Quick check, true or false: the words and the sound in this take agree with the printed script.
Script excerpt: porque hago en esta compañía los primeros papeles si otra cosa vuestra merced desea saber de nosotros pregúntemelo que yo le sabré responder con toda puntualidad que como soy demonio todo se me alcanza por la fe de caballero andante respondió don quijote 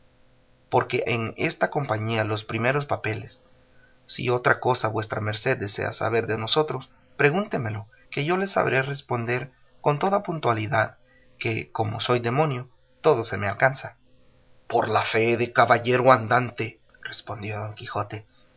false